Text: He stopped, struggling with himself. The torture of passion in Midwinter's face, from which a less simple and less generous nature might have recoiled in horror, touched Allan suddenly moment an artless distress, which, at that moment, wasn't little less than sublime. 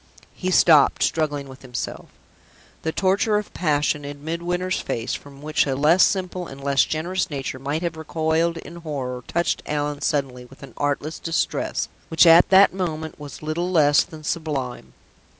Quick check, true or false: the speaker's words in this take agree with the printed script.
false